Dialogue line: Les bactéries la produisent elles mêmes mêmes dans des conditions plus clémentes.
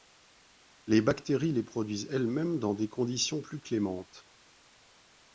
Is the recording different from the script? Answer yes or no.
yes